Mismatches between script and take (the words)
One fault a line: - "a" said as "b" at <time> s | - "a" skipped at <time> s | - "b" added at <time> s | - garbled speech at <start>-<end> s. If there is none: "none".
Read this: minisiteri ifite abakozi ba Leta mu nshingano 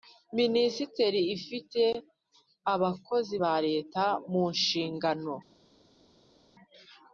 none